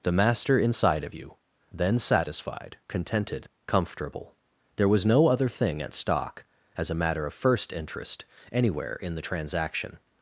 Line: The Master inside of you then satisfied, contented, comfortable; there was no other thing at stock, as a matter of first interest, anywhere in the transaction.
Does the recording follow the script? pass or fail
pass